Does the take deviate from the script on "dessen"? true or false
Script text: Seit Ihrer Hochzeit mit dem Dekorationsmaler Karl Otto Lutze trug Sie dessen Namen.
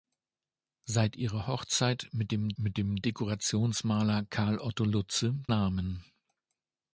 true